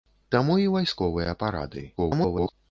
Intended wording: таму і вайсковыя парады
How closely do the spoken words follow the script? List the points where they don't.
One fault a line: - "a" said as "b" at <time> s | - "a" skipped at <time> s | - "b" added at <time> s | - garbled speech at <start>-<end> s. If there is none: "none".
- garbled speech at 2.0-2.5 s